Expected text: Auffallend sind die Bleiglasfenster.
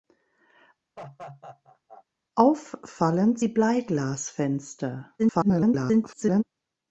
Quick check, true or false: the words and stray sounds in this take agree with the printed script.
false